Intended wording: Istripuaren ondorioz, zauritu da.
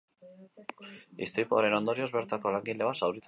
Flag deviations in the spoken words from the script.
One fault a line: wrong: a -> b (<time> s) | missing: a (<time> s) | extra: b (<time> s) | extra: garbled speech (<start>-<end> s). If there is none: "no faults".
extra: bertako langile bat (2.2 s)